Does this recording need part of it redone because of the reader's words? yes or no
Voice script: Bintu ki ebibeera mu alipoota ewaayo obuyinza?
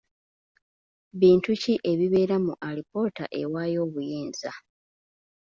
no